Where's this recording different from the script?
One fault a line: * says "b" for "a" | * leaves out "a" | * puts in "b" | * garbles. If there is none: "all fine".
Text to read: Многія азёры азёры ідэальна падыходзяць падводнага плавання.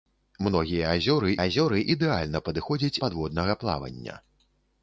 all fine